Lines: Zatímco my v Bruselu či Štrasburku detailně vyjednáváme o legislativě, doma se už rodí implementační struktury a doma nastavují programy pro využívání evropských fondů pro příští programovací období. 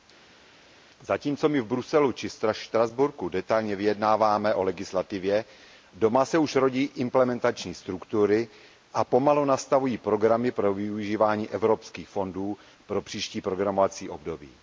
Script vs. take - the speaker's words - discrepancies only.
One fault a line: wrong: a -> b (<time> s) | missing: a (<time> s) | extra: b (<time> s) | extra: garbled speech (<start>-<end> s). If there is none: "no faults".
wrong: doma -> pomalu (9.0 s)